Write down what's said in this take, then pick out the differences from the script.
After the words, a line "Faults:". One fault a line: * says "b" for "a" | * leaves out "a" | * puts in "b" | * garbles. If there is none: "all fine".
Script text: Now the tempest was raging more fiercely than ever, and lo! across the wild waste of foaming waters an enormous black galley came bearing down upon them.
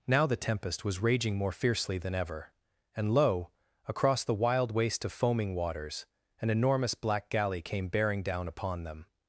Now the tempest was raging more fiercely than ever, and lo! across the wild waste of foaming waters an enormous black galley came bearing down upon them.
Faults:
all fine